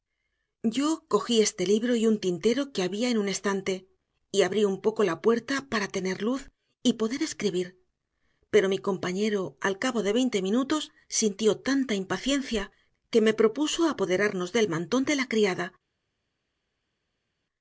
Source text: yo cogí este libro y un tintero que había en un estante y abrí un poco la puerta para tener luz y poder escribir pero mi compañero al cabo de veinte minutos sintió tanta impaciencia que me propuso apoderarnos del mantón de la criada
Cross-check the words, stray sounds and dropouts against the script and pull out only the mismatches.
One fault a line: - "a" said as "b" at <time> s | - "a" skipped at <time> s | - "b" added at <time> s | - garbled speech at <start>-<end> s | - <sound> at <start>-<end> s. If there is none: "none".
none